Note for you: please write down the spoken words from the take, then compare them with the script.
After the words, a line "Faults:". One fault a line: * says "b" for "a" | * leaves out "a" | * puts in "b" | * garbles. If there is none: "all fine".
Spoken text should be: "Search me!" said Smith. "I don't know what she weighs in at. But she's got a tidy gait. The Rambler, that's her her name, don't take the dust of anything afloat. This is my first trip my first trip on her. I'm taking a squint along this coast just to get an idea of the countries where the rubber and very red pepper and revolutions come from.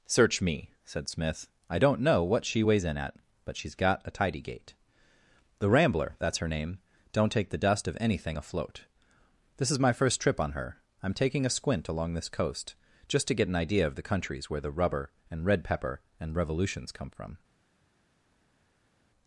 "Search me!" said Smith. "I don't know what she weighs in at. But she's got a tidy gait. The Rambler, that's her name, don't take the dust of anything afloat. This is my first trip on her. I'm taking a squint along this coast just to get an idea of the countries where the rubber and red pepper and revolutions come from.
Faults:
* leaves out "her"
* leaves out "my first trip"
* leaves out "very"